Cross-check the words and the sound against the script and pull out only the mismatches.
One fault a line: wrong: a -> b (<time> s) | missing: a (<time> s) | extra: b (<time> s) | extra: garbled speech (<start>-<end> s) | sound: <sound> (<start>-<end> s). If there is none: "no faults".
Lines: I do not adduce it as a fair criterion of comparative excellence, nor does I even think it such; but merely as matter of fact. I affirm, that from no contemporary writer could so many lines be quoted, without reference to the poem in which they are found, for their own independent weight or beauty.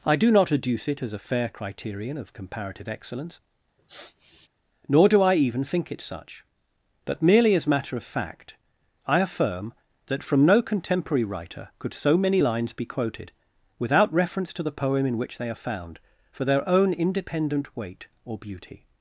sound: sniff (3.8-4.5 s)
wrong: does -> do (5.1 s)